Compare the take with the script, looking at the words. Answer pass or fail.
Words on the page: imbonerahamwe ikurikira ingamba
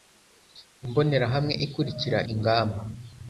pass